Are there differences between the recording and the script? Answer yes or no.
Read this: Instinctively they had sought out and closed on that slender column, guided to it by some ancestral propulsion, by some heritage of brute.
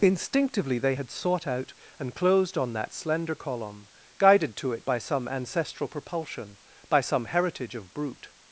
no